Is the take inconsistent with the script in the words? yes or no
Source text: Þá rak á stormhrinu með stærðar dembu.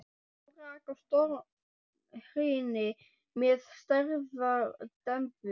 no